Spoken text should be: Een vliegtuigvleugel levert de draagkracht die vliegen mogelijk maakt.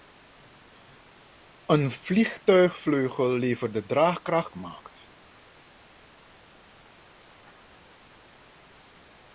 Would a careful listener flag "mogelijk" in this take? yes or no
yes